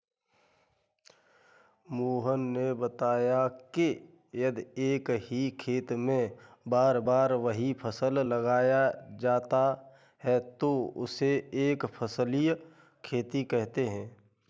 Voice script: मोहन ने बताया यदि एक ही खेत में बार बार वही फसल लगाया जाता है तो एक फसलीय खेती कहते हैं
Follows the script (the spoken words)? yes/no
no